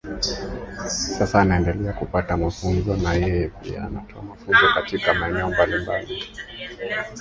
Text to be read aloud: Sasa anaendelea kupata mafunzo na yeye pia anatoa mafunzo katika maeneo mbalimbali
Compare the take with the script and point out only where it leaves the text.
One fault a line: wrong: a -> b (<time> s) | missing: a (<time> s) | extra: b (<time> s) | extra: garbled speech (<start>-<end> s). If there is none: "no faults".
no faults